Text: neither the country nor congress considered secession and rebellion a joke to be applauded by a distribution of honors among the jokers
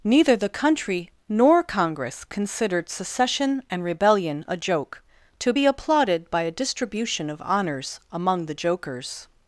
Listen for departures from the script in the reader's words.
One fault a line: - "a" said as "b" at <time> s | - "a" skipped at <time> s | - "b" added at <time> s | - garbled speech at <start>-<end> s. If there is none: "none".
none